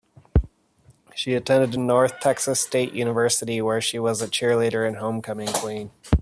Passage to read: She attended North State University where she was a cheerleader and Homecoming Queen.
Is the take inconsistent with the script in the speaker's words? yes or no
yes